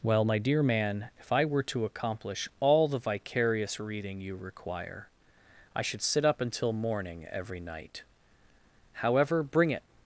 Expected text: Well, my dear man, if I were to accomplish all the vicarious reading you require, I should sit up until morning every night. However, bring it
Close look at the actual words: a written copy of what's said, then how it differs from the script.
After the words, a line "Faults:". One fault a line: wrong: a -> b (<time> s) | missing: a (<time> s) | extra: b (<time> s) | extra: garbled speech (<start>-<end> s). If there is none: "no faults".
Well, my dear man, if I were to accomplish all the vicarious reading you require, I should sit up until morning every night. However, bring it
Faults:
no faults